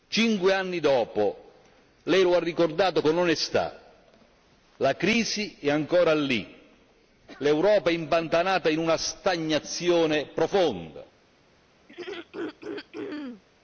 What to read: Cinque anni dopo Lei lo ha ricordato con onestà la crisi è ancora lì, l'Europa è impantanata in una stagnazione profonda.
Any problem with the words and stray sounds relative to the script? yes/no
yes